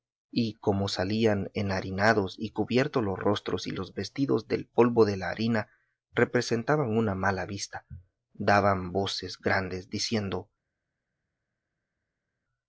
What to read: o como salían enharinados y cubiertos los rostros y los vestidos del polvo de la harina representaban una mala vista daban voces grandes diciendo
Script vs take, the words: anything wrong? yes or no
yes